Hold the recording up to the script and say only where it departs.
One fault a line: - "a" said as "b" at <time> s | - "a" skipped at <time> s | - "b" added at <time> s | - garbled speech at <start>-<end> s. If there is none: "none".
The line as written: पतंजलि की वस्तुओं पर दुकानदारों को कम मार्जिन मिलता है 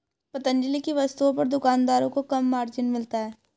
none